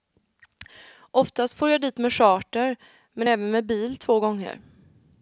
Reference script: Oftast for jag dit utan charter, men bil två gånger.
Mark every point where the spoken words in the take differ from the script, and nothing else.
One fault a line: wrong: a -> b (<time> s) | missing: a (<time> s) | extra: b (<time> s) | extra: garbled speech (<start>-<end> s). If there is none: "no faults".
wrong: utan -> med (2.0 s)
extra: även med (3.3 s)